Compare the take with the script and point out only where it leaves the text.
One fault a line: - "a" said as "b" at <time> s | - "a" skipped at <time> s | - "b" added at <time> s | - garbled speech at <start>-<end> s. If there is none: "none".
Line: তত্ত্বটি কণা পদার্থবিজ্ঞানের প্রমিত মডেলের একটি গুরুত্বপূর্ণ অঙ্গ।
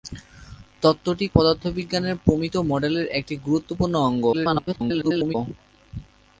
- "কণা" skipped at 1.2 s
- garbled speech at 4.3-5.4 s